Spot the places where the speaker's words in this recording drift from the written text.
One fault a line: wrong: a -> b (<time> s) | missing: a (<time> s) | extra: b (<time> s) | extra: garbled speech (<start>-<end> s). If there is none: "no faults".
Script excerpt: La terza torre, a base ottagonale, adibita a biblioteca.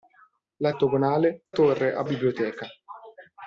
wrong: terza -> ottagonale (0.7 s)
missing: base ottagonale adibita (2.0 s)